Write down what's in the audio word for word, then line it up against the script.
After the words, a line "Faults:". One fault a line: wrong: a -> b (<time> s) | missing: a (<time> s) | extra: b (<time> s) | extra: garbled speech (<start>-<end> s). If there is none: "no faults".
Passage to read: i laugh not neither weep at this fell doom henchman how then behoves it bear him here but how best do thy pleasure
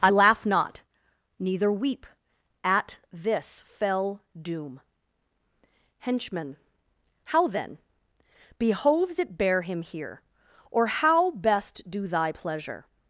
i laugh not neither weep at this fell doom henchman how then behoves it bear him here or how best do thy pleasure
Faults:
wrong: but -> or (10.7 s)